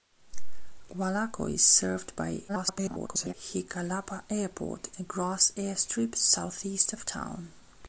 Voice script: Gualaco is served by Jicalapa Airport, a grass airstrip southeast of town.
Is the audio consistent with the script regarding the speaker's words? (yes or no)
no